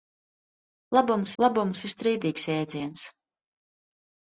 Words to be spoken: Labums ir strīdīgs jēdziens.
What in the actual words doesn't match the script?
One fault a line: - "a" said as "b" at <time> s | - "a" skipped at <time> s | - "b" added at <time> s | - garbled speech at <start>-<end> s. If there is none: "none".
- "labums" added at 1.4 s